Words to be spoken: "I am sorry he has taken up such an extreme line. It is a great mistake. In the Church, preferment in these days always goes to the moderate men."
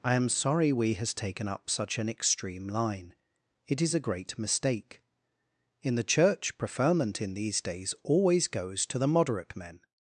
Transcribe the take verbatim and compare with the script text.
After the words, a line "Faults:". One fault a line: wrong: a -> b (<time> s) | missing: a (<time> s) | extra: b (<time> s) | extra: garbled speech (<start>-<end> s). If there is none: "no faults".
"I am sorry we has taken up such an extreme line. It is a great mistake. In the Church, preferment in these days always goes to the moderate men."
Faults:
wrong: he -> we (0.7 s)